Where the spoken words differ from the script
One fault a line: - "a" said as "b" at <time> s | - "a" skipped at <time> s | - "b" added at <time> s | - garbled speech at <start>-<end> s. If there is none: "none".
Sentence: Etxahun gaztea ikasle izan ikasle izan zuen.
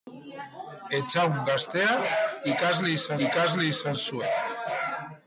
none